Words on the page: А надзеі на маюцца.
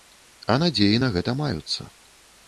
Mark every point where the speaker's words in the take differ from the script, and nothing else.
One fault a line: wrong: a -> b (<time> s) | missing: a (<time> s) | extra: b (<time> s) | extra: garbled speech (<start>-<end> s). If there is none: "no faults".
extra: гэта (1.2 s)